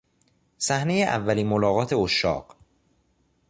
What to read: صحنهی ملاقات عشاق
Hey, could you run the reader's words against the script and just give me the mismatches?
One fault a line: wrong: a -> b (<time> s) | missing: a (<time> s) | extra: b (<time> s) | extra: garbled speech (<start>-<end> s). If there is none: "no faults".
extra: اولین (1.0 s)